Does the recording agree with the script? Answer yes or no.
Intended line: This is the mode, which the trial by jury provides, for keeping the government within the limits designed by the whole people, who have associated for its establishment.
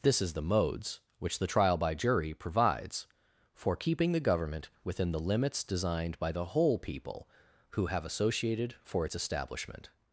no